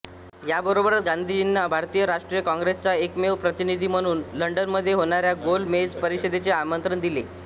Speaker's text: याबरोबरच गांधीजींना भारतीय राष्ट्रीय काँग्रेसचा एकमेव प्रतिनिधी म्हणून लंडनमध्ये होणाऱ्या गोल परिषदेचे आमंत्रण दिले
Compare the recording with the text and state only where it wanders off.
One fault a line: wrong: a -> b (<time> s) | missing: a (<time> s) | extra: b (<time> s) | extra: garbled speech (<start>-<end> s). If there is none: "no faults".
extra: मेज (5.7 s)